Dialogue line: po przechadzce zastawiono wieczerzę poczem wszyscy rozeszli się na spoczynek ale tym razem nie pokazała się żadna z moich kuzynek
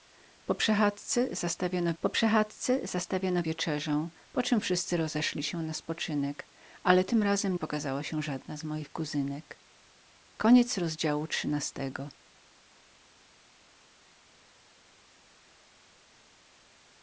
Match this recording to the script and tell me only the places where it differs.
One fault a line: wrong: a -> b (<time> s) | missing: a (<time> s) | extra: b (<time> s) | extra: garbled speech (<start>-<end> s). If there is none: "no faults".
extra: po przechadzce zastawiono (2.0 s)
missing: nie (7.6 s)